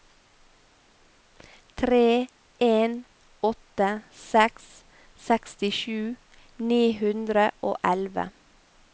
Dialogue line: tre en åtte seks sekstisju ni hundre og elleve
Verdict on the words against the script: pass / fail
pass